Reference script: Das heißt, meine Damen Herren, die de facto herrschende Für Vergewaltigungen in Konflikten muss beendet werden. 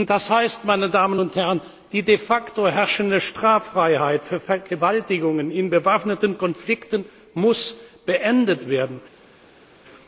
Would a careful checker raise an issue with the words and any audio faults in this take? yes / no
yes